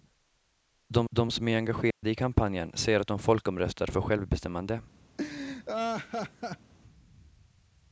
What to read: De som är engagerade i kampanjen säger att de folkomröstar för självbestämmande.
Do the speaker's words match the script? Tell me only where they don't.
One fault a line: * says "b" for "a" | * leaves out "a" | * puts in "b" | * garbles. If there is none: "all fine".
* puts in "de"